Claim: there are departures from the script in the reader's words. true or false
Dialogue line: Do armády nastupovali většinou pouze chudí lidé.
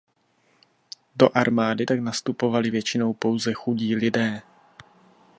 true